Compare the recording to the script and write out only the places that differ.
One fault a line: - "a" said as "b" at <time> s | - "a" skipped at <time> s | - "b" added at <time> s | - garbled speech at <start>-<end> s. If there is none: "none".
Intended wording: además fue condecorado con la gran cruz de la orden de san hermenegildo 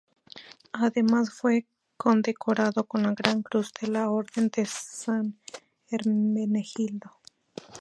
none